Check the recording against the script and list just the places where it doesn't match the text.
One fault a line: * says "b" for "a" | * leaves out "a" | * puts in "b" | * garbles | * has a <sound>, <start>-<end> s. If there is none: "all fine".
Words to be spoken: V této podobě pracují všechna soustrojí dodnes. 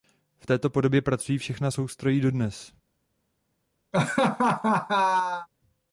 * has a laugh, 3.9-5.5 s